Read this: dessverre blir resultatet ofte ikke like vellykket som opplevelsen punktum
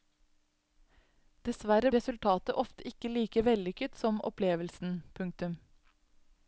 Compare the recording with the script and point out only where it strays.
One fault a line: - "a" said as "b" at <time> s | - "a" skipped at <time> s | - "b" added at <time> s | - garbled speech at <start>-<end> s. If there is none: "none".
- "blir" skipped at 1.9 s